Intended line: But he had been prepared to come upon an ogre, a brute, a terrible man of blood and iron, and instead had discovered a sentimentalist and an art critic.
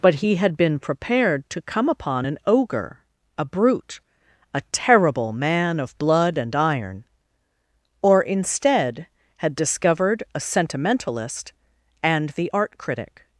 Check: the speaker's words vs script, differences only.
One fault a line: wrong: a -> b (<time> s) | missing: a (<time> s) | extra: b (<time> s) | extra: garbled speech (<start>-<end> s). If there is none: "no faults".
wrong: and -> or (8.0 s)
wrong: an -> the (12.3 s)